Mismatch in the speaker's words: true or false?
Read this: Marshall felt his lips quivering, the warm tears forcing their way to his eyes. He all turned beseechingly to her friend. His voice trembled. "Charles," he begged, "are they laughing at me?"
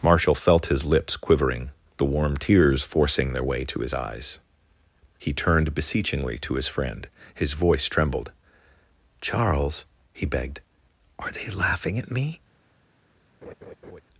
true